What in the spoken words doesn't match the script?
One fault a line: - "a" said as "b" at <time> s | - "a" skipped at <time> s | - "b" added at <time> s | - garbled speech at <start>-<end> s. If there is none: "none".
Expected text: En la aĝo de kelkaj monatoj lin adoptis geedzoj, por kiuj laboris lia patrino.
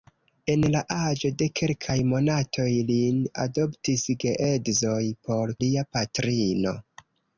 - "kiuj laboris" skipped at 5.5 s